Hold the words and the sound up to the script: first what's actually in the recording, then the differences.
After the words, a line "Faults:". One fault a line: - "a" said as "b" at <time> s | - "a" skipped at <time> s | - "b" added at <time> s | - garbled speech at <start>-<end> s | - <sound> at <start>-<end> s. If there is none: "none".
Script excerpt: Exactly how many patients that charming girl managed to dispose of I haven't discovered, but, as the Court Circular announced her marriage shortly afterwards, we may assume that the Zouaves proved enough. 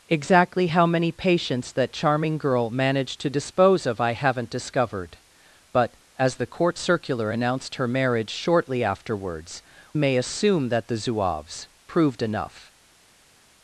Exactly how many patients that charming girl managed to dispose of I haven't discovered, but, as the Court Circular announced her marriage shortly afterwards, may assume that the Zouaves proved enough.
Faults:
- "we" skipped at 9.6 s